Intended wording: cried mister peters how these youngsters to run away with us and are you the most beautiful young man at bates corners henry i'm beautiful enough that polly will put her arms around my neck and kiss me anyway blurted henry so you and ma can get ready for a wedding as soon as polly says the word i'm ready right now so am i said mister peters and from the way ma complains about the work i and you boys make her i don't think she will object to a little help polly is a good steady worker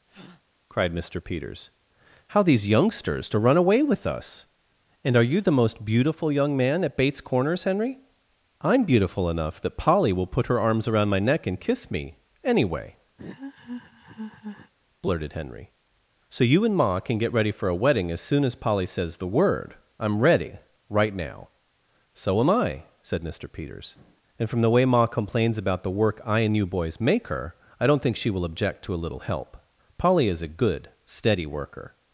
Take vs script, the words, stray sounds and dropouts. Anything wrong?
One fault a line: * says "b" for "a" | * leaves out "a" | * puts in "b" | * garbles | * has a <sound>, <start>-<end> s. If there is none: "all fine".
* has a breath, 0.1-0.4 s
* has a laugh, 13.2-14.7 s